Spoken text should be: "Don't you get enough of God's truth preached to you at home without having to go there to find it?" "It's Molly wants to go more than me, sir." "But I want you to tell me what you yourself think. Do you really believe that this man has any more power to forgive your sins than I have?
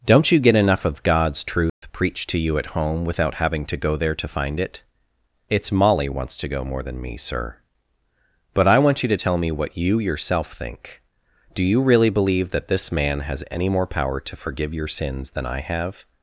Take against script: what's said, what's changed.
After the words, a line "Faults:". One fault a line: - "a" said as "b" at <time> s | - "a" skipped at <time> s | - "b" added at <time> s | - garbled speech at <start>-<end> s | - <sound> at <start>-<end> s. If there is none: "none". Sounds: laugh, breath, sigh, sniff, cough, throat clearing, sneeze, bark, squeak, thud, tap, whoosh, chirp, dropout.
"Don't you get enough of God's truth preached to you at home without having to go there to find it?" "It's Molly wants to go more than me, sir." "But I want you to tell me what you yourself think. Do you really believe that this man has any more power to forgive your sins than I have?
Faults:
- dropout at 1.7-1.8 s